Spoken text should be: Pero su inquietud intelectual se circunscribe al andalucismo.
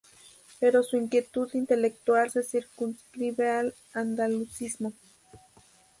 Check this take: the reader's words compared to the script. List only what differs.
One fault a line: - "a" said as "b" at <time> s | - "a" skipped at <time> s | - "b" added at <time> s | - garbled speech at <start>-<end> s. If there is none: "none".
none